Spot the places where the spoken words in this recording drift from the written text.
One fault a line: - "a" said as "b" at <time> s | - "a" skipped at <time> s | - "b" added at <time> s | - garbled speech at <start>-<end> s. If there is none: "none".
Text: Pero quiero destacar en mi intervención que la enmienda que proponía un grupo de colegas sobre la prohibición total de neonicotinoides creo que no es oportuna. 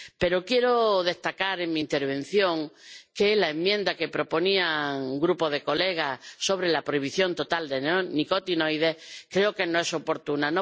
none